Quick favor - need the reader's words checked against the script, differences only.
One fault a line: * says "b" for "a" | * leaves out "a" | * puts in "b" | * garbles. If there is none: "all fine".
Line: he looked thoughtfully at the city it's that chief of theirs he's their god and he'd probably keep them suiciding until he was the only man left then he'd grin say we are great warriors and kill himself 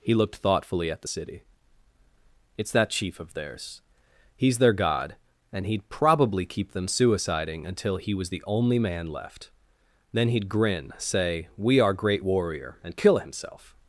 * says "warrior" for "warriors"